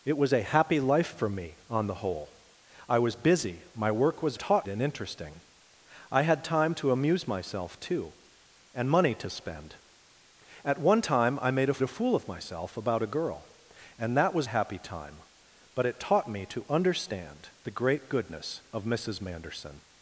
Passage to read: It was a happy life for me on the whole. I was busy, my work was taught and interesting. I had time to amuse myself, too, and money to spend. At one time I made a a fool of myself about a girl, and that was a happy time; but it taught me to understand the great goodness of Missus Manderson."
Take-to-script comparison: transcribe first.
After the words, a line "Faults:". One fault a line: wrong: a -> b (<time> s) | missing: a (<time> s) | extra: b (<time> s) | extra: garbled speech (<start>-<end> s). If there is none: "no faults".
It was a happy life for me on the whole. I was busy, my work was taught and interesting. I had time to amuse myself, too, and money to spend. At one time I made a a fool of myself about a girl, and that was a happy time; but it taught me to understand the great goodness of Missus Manderson."
Faults:
no faults